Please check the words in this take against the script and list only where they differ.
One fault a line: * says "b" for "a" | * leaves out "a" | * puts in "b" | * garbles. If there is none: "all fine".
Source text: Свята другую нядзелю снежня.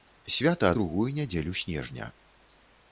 all fine